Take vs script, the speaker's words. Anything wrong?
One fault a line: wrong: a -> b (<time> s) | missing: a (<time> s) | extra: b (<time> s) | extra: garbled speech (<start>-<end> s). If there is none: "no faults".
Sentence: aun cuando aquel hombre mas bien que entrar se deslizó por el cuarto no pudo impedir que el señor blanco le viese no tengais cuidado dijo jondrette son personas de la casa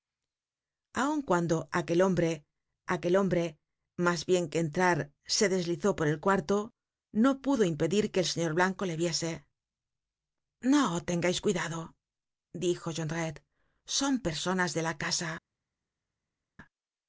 extra: aquel hombre (2.9 s)